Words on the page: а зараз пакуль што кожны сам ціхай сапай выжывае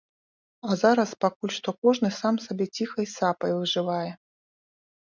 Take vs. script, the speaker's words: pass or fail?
fail